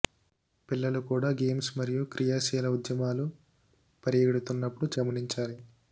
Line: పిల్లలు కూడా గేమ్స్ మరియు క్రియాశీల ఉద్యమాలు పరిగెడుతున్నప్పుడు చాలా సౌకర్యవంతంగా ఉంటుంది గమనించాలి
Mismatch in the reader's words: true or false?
true